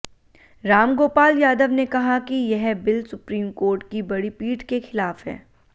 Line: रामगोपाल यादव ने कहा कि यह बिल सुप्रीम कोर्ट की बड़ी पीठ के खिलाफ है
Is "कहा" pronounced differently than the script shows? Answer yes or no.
no